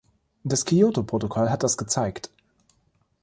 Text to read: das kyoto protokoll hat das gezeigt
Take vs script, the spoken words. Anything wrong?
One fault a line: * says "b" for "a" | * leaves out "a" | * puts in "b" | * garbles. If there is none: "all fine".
all fine